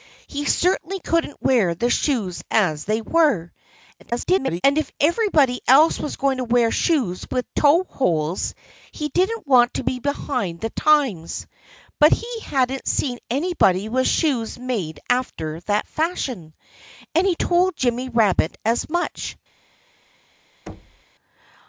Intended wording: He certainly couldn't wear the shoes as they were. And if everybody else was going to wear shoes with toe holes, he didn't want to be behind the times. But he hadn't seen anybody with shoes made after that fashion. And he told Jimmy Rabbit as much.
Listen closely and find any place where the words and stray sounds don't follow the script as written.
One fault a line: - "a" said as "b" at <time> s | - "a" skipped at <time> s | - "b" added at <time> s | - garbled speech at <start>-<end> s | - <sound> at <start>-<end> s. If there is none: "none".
- garbled speech at 4.0-4.6 s
- thud at 20.7-21.0 s